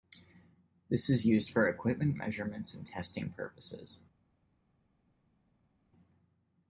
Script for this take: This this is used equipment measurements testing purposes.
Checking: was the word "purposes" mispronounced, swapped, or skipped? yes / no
no